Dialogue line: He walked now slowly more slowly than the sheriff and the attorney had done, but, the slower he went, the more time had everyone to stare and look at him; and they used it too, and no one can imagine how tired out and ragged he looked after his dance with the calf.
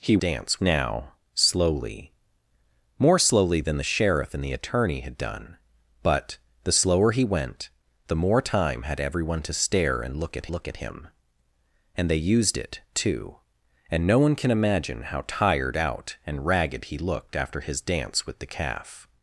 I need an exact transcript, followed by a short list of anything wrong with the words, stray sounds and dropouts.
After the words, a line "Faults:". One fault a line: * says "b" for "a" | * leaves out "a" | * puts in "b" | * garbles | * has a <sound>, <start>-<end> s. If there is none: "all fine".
He dance now slowly more slowly than the sheriff and the attorney had done, but, the slower he went, the more time had everyone to stare and look at look at him; and they used it too, and no one can imagine how tired out and ragged he looked after his dance with the calf.
Faults:
* says "dance" for "walked"
* puts in "look at"